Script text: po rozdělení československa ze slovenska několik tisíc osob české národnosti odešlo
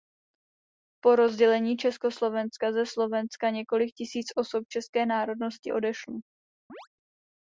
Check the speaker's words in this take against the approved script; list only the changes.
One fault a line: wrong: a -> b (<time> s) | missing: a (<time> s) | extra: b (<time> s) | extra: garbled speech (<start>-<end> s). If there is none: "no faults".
no faults